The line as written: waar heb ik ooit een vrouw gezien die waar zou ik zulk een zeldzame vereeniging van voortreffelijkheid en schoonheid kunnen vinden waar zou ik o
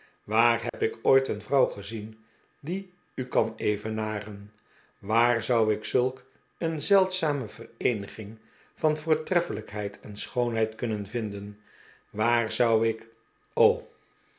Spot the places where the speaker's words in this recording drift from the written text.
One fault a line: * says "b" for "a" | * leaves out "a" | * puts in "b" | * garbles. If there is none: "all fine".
* puts in "u kan evenaren"